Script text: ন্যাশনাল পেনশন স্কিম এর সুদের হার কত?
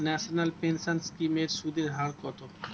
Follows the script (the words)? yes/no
yes